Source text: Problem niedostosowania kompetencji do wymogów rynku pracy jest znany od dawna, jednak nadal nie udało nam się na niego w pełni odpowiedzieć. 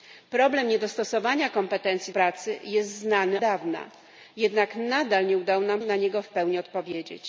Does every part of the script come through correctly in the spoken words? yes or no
no